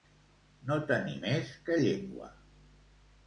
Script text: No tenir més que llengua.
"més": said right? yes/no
yes